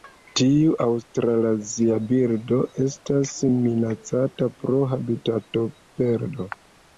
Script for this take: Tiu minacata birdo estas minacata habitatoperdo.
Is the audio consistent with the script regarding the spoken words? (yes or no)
no